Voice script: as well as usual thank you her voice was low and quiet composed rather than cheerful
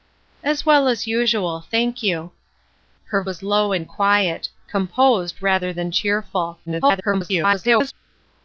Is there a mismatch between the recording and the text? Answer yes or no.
yes